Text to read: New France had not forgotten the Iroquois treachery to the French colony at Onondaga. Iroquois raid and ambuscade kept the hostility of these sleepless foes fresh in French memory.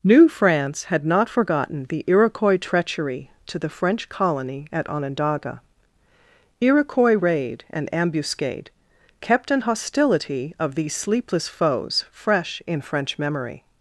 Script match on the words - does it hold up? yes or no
no